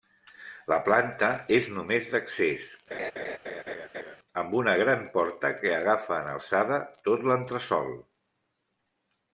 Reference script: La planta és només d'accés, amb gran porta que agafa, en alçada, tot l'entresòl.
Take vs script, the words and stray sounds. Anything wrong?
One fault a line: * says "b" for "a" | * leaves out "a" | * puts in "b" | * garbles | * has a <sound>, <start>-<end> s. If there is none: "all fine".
* has a laugh, 2.9-4.2 s
* puts in "una"